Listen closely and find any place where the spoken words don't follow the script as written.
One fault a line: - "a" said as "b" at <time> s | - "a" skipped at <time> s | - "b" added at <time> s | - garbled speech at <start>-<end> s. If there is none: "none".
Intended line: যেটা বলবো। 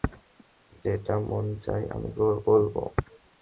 - "মন চায় আমি" added at 1.3 s